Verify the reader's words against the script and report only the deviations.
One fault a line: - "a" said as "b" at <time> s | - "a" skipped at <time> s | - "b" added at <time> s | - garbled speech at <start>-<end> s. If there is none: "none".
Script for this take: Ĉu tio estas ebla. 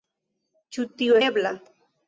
- "estas" skipped at 1.2 s